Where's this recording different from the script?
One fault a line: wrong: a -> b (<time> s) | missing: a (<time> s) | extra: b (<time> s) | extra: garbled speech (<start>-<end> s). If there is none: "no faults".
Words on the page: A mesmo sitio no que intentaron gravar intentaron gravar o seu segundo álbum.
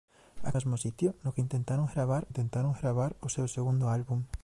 no faults